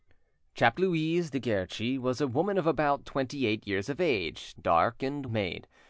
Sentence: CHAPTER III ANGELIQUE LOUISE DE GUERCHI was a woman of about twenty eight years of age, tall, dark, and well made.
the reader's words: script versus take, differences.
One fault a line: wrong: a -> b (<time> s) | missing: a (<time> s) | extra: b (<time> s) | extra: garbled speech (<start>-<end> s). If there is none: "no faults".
missing: III ANGELIQUE (0.8 s)
missing: tall (4.5 s)
missing: well (5.2 s)